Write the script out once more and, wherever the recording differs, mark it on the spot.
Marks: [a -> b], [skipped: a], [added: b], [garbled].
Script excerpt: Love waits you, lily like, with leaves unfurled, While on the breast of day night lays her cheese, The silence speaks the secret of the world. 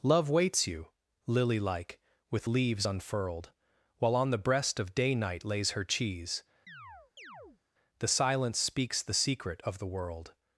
Love waits you, lily like, with leaves unfurled, While on the breast of day night lays her cheese, The silence speaks the secret of the world.